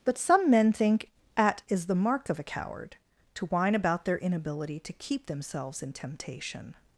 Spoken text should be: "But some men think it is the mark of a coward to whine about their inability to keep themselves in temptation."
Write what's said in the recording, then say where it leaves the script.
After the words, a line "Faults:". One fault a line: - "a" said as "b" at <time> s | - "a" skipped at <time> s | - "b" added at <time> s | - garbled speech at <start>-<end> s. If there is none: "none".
"But some men think at is the mark of a coward to whine about their inability to keep themselves in temptation."
Faults:
- "it" said as "at" at 1.4 s